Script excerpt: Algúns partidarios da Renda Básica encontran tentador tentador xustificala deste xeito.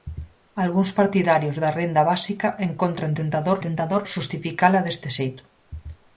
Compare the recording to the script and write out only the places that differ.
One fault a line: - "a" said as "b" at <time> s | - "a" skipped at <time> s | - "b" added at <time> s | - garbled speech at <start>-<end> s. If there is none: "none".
none